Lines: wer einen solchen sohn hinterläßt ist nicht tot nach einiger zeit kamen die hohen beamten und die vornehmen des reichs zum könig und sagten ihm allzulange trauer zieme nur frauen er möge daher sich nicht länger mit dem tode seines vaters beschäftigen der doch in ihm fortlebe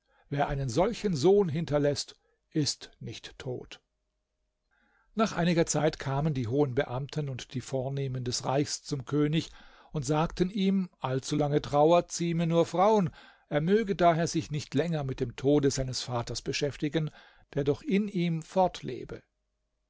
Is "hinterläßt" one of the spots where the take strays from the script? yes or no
no